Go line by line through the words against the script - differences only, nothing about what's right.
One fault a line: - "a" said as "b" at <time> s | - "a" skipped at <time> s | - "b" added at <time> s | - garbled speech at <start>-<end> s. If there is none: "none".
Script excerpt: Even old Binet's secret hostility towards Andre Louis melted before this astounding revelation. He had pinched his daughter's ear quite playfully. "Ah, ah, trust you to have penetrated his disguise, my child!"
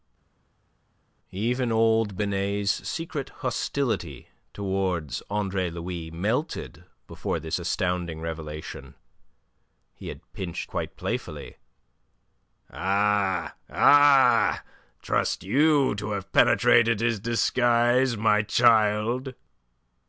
- "his daughter's ear" skipped at 10.7 s